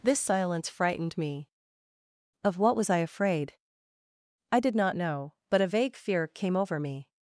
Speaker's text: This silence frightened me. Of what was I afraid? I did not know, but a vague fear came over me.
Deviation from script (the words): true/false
false